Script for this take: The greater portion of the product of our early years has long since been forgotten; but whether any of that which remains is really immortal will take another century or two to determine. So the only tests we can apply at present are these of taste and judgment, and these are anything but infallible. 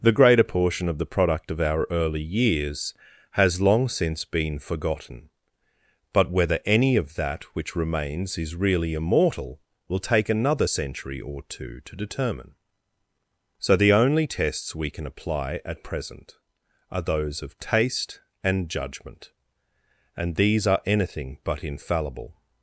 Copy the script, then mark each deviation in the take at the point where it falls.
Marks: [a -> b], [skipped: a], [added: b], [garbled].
The greater portion of the product of our early years has long since been forgotten; but whether any of that which remains is really immortal will take another century or two to determine. So the only tests we can apply at present are [these -> those] of taste and judgment, and these are anything but infallible.